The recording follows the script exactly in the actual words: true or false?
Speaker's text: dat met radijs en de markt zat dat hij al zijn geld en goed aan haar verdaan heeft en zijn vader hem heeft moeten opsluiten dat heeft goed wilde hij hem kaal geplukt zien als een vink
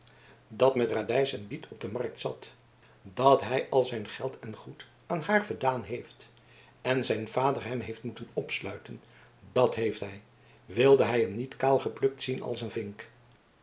false